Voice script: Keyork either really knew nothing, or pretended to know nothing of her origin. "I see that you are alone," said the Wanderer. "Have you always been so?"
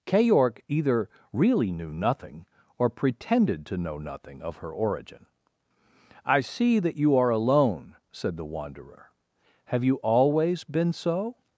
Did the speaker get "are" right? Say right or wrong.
right